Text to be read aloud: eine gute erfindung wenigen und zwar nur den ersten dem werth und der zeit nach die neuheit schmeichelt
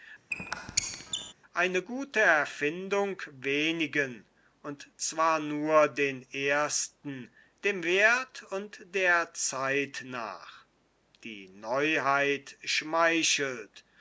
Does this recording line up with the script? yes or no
yes